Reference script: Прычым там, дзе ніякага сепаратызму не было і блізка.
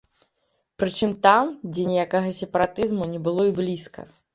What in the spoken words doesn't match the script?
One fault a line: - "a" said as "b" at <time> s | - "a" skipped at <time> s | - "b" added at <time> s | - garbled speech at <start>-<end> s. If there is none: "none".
none